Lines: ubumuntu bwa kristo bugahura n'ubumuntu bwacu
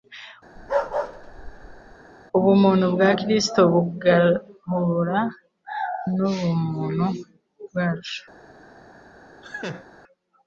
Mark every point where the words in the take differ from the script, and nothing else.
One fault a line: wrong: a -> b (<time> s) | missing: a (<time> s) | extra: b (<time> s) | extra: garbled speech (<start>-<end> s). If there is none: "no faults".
no faults